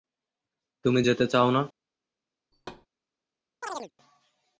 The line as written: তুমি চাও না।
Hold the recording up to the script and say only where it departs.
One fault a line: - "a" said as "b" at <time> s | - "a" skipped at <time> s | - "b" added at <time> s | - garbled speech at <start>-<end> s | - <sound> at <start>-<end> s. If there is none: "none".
- "যেতে" added at 1.0 s
- thud at 2.5-2.9 s
- chirp at 3.6-3.9 s